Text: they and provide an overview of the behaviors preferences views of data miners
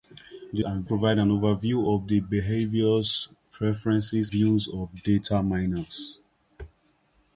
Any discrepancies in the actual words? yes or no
no